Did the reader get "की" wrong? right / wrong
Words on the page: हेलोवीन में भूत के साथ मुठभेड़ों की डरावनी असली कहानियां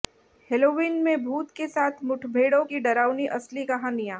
right